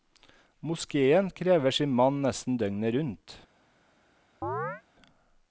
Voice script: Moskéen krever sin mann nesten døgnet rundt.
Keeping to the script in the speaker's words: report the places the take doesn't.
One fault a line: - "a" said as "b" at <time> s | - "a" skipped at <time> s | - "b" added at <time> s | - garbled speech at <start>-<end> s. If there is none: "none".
none